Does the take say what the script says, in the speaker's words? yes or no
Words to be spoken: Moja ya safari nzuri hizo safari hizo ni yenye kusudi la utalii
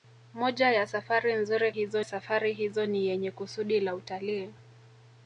yes